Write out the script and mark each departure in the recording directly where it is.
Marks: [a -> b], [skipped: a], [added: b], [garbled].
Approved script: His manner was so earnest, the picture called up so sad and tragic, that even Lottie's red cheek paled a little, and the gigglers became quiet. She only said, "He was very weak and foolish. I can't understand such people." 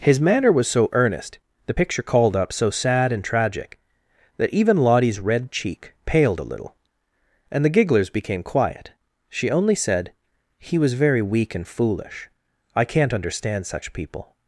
His manner was so earnest, the picture called up so sad and tragic, that even Lottie's red cheek paled a little, and the gigglers became quiet. She only said, "He was very weak and foolish. I can't understand such people."